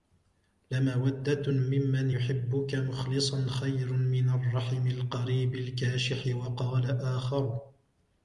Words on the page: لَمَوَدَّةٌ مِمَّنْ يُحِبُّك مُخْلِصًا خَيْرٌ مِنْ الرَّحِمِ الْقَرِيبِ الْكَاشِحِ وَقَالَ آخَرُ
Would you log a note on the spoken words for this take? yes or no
no